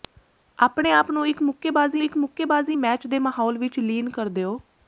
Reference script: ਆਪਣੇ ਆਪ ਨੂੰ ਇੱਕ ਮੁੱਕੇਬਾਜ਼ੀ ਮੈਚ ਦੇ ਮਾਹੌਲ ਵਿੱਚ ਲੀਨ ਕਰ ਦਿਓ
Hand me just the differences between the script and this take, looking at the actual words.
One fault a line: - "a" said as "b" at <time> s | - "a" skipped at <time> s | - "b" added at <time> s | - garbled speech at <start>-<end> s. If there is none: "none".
- "ਇੱਕ ਮੁੱਕੇਬਾਜ਼ੀ" added at 2.0 s